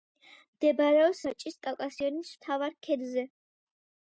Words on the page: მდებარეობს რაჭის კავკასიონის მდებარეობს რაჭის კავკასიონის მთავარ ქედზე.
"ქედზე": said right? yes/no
yes